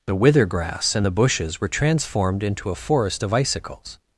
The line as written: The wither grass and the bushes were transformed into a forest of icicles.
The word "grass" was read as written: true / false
true